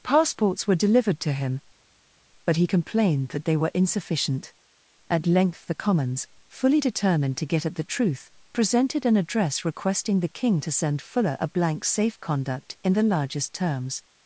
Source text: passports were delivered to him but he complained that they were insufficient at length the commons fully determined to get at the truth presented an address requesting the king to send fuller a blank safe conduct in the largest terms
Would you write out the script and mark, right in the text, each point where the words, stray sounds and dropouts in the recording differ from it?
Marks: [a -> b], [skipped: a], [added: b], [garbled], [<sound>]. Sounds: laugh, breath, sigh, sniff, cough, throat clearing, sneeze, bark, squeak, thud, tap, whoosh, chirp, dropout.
passports were delivered to him but he complained that they were insufficient at length the commons fully determined to get at the truth presented an address requesting the king to send fuller a blank safe conduct in the largest terms